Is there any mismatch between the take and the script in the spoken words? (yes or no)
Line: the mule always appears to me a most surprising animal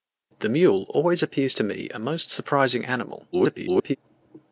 yes